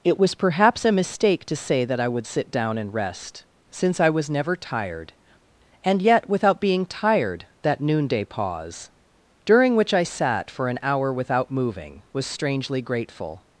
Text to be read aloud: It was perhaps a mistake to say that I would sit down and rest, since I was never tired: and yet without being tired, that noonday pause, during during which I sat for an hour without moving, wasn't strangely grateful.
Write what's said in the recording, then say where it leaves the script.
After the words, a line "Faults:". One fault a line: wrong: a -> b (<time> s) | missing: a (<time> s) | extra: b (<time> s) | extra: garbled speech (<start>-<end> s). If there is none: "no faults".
It was perhaps a mistake to say that I would sit down and rest, since I was never tired: and yet without being tired, that noonday pause, during which I sat for an hour without moving, was strangely grateful.
Faults:
missing: during (9.8 s)
wrong: wasn't -> was (12.1 s)